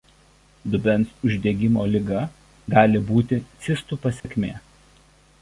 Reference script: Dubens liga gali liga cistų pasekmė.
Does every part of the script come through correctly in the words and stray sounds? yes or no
no